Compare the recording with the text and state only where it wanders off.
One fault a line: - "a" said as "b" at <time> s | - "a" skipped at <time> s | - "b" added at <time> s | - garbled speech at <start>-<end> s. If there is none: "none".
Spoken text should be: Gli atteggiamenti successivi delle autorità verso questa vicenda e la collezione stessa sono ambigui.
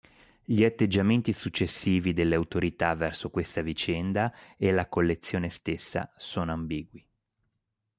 none